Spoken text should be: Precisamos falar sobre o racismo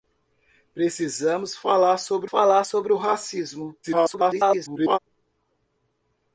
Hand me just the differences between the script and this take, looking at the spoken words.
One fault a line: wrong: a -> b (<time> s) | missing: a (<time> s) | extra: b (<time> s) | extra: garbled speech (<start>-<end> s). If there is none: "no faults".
extra: falar sobre (2.2 s)
extra: garbled speech (3.8-5.0 s)